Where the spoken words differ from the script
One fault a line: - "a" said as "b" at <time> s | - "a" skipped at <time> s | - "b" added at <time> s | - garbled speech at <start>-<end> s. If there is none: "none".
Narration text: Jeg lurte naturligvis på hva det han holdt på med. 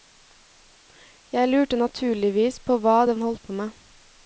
none